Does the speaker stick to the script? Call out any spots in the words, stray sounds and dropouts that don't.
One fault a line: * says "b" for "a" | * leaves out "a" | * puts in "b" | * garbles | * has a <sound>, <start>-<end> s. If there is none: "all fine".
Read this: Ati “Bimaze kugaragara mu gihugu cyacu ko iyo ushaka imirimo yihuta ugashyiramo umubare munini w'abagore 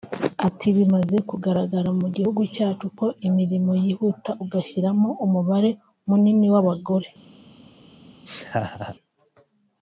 * leaves out "iyo ushaka"
* has a laugh, 8.3-9.0 s